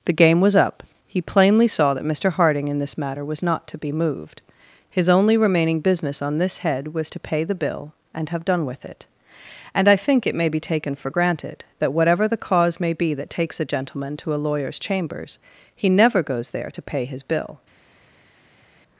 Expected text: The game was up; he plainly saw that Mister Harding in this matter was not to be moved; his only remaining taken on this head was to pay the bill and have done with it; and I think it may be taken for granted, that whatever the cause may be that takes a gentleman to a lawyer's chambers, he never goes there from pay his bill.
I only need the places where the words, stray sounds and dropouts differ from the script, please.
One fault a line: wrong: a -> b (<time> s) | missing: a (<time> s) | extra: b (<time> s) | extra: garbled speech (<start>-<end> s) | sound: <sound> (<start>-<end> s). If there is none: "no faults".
wrong: taken -> business (5.8 s)
wrong: from -> to (16.7 s)